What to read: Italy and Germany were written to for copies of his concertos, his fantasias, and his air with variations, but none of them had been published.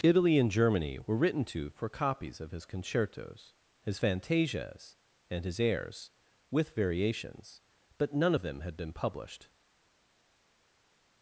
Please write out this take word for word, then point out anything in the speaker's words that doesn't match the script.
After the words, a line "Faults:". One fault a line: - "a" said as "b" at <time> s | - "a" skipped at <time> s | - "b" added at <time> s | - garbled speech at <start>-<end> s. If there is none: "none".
Italy and Germany were written to for copies of his concertos, his fantasias, and his airs with variations, but none of them had been published.
Faults:
- "air" said as "airs" at 5.6 s